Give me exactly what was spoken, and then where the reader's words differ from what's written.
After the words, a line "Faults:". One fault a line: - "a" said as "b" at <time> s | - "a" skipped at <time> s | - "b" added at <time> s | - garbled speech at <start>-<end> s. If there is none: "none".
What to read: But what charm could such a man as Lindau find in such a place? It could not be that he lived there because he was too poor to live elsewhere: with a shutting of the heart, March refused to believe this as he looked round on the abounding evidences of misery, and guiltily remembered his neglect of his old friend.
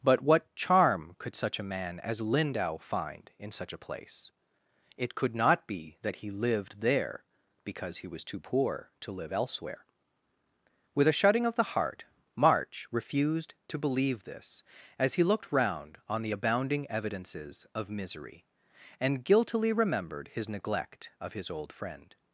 But what charm could such a man as Lindau find in such a place? It could not be that he lived there because he was too poor to live elsewhere: with a shutting of the heart, March refused to believe this as he looked round on the abounding evidences of misery, and guiltily remembered his neglect of his old friend.
Faults:
none